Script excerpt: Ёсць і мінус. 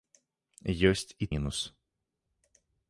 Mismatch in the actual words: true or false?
false